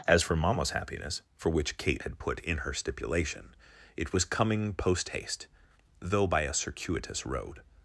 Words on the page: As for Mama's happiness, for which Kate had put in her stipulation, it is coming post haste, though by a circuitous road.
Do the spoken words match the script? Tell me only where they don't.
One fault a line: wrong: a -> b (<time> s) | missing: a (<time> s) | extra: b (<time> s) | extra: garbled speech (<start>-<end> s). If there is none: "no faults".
wrong: is -> was (4.1 s)